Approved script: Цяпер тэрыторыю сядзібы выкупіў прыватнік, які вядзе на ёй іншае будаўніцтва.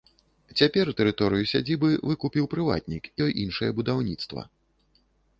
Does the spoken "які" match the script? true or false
false